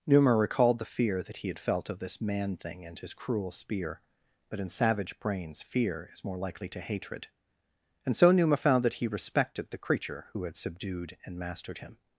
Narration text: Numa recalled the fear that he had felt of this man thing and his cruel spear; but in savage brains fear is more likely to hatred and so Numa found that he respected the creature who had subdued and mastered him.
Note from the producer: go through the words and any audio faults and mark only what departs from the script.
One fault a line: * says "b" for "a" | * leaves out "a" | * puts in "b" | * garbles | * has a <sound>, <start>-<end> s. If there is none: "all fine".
all fine